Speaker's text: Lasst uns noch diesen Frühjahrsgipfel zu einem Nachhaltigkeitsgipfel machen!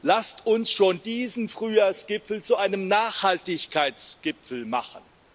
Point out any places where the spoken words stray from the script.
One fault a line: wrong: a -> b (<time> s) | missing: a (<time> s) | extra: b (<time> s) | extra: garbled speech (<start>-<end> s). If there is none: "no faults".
wrong: noch -> schon (0.7 s)